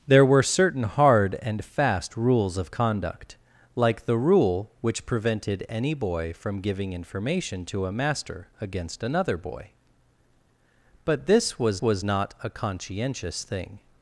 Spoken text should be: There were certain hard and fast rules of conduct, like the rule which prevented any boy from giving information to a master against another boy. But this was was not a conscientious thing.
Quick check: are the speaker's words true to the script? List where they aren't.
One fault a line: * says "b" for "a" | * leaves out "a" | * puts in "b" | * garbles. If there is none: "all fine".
all fine